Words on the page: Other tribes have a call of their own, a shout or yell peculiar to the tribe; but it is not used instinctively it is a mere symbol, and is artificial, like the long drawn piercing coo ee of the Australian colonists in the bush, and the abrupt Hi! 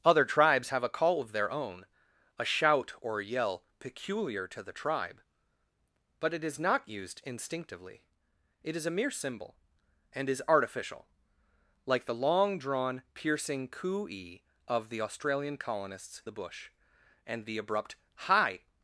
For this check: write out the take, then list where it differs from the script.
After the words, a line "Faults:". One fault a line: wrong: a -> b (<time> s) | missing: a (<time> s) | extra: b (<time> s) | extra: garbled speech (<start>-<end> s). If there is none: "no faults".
Other tribes have a call of their own, a shout or yell peculiar to the tribe; but it is not used instinctively it is a mere symbol, and is artificial, like the long drawn piercing coo ee of the Australian colonists the bush, and the abrupt Hi!
Faults:
missing: in (16.2 s)